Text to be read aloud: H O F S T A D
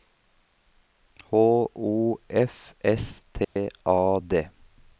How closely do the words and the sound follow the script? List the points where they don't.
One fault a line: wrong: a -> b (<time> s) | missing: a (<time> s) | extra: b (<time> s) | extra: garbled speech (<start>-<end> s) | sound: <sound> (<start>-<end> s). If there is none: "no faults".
sound: dropout (3.4-3.6 s)